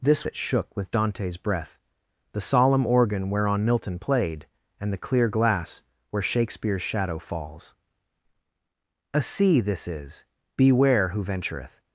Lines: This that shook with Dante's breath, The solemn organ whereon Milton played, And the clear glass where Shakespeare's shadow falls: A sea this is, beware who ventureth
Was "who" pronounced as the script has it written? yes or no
yes